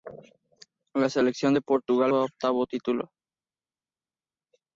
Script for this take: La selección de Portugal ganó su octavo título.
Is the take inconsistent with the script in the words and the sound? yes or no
yes